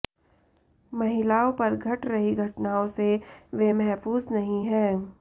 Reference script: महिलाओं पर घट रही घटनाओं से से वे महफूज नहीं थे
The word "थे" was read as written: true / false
false